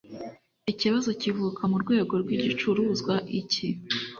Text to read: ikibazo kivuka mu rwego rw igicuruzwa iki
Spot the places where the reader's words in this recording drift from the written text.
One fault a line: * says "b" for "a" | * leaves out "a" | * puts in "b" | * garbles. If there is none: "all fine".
all fine